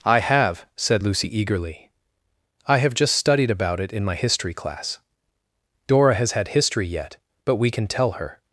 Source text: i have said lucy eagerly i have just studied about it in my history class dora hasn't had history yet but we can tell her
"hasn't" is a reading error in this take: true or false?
true